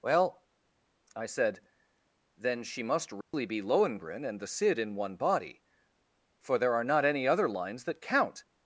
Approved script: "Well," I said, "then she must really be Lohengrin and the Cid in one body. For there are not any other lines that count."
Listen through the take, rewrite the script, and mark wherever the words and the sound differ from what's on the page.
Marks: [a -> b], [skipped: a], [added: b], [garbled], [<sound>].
"Well," I said, "then she must really [dropout] be Lohengrin and the Cid in one body. For there are not any other lines that count."